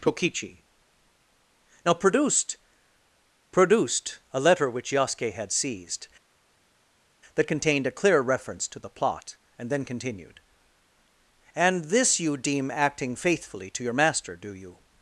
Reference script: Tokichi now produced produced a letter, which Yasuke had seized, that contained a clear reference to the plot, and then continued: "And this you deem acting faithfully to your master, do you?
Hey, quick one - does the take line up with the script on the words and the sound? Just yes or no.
yes